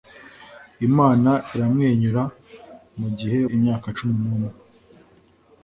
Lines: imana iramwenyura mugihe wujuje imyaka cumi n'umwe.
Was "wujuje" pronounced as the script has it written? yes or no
no